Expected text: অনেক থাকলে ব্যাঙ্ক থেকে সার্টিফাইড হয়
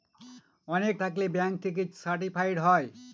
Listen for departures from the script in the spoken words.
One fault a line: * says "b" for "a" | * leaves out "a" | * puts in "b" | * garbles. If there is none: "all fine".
all fine